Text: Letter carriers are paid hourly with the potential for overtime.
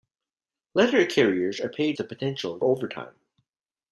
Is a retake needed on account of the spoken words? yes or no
yes